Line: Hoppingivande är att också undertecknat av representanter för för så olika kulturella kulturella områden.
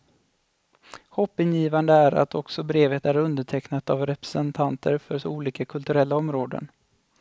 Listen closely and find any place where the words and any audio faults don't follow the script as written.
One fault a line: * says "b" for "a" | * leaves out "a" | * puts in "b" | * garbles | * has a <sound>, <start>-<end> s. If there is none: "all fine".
* puts in "brevet är"
* leaves out "för"
* leaves out "kulturella"